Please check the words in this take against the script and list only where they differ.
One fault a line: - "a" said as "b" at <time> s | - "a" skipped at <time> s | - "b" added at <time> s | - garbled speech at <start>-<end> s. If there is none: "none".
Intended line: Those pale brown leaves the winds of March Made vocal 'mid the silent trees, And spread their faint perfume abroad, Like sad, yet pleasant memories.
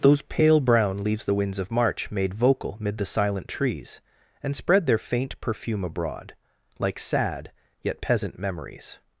- "pleasant" said as "peasant" at 8.0 s